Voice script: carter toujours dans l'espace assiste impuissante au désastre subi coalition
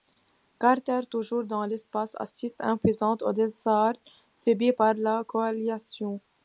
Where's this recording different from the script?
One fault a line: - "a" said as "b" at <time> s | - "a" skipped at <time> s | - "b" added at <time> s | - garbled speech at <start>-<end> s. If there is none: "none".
- "par la" added at 4.7 s